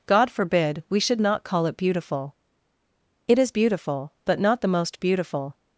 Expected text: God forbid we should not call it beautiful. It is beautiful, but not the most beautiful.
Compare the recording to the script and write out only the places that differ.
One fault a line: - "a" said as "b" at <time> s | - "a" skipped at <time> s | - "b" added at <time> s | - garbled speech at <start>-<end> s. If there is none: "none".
none